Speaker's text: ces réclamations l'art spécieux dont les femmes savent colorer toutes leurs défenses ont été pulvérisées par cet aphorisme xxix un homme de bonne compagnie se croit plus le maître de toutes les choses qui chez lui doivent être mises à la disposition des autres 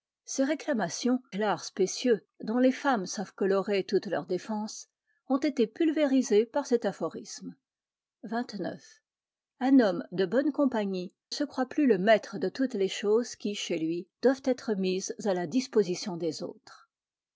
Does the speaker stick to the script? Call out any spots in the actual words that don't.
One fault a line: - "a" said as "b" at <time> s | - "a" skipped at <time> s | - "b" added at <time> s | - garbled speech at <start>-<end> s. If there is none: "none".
none